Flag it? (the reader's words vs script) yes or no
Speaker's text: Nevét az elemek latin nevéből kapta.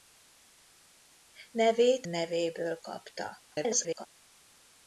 yes